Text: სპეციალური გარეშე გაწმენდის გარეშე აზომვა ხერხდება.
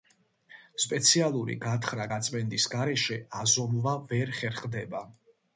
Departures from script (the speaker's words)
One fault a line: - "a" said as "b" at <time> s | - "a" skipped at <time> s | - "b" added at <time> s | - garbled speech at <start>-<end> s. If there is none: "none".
- "გარეშე" said as "გათხრა" at 1.7 s
- "ვერ" added at 4.1 s